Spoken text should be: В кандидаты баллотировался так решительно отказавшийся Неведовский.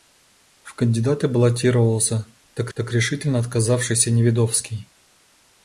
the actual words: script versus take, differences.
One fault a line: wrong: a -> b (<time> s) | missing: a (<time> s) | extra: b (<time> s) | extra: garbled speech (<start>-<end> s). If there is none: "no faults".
extra: так (2.7 s)